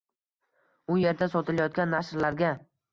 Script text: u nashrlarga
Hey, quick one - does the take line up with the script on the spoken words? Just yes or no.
no